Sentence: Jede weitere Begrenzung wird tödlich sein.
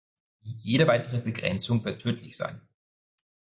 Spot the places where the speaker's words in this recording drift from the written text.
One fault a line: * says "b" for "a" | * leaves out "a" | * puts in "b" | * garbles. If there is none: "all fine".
all fine